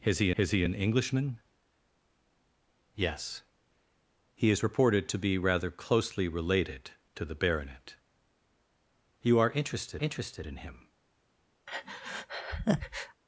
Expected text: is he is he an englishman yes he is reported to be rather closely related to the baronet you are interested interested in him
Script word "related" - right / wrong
right